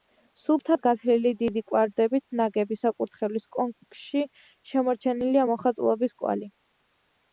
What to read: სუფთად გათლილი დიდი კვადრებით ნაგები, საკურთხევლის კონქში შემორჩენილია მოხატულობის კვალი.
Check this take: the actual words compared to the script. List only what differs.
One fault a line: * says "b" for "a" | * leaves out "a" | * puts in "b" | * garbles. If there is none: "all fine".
all fine